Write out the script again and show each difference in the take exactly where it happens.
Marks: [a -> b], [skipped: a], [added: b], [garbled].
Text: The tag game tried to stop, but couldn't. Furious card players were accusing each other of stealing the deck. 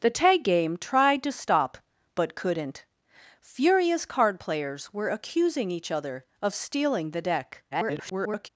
The tag game tried to stop, but couldn't. Furious card players were accusing each other of stealing the deck. [garbled]